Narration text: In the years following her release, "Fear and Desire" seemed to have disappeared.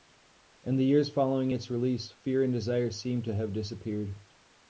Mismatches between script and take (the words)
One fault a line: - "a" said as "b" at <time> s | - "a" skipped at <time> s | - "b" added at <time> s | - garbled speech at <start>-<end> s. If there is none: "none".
- "her" said as "its" at 1.5 s